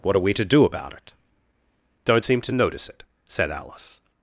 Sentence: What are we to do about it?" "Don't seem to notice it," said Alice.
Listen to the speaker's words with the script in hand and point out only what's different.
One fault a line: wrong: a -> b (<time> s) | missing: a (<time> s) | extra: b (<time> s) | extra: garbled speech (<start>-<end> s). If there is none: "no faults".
no faults